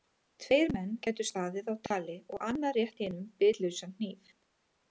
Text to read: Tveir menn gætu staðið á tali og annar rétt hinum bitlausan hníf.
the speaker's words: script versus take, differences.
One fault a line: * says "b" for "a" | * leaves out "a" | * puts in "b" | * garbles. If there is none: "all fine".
all fine